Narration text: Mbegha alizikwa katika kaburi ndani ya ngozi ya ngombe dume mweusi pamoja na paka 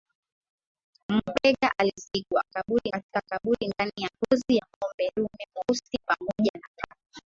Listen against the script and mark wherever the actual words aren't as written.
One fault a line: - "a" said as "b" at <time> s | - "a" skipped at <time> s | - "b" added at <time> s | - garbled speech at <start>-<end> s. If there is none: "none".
- "alizikwa" said as "kaburi" at 2.4 s